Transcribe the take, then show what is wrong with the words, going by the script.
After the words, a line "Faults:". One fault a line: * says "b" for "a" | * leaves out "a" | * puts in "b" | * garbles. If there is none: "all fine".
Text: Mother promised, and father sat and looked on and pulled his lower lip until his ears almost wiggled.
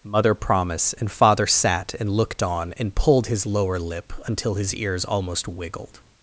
Mother promise, and father sat and looked on and pulled his lower lip until his ears almost wiggled.
Faults:
* says "promise" for "promised"